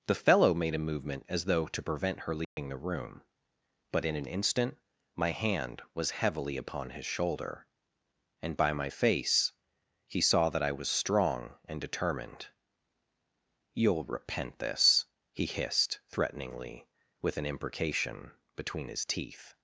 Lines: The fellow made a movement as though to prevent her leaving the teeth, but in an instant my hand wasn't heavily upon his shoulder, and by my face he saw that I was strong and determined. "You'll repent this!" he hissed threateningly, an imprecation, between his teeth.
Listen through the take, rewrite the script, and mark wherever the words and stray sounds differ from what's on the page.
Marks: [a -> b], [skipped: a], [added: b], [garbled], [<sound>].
The fellow made a movement as though to prevent her leaving [dropout] the [teeth, -> room] but in an instant my hand [wasn't -> was] heavily upon his shoulder, and by my face he saw that I was strong and determined. "You'll repent this!" he hissed threateningly, [added: with] an imprecation, between his teeth.